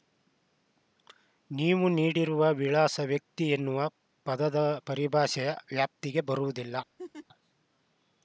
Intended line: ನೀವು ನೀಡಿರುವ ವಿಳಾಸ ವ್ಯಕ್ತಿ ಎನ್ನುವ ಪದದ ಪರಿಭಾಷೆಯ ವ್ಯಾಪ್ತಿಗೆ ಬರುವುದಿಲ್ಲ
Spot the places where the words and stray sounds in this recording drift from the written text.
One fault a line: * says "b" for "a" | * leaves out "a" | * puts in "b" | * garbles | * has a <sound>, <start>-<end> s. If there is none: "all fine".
* has a laugh, 7.0-7.3 s